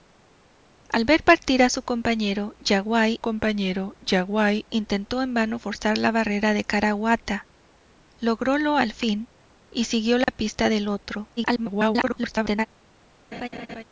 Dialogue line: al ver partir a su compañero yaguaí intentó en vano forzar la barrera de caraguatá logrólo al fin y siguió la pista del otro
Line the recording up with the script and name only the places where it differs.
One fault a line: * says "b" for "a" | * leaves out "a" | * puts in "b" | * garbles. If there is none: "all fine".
* puts in "compañero yaguaí"
* garbles